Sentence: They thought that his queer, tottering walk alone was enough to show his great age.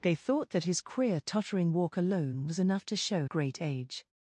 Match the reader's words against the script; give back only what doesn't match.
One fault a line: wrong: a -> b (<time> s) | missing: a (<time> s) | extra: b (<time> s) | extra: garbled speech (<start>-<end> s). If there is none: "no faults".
missing: his (3.3 s)